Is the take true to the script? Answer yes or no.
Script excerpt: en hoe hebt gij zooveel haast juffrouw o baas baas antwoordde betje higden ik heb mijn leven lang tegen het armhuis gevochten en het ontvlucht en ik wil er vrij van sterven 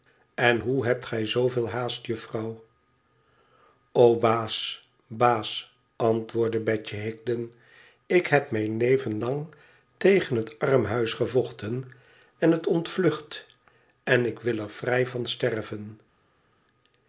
yes